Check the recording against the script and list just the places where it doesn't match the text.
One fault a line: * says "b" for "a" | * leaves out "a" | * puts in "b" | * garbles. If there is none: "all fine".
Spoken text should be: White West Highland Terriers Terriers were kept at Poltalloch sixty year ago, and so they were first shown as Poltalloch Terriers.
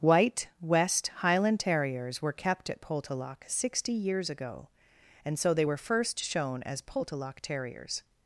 * leaves out "Terriers"
* says "years" for "year"